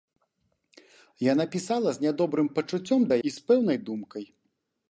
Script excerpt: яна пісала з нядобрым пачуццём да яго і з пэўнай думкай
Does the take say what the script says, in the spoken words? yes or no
no